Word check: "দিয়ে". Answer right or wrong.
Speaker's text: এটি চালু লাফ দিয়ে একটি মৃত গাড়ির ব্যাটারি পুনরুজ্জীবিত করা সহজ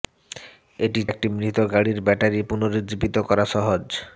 wrong